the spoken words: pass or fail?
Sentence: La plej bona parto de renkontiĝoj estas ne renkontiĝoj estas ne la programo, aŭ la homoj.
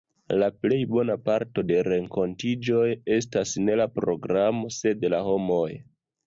fail